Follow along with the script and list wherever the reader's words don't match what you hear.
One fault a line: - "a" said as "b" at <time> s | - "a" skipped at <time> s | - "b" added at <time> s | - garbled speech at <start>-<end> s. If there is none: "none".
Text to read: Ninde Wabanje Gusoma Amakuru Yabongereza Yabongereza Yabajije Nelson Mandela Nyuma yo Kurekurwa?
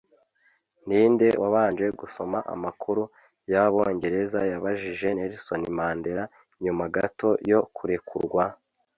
- "Yabongereza" skipped at 4.4 s
- "gato" added at 6.9 s